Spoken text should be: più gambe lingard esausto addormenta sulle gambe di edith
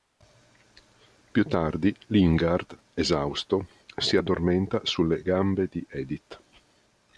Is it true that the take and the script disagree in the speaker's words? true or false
true